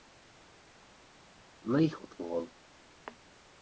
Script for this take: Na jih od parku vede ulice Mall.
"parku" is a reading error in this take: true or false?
true